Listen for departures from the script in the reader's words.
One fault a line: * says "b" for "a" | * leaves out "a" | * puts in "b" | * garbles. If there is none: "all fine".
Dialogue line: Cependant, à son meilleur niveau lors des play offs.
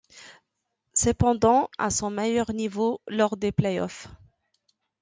all fine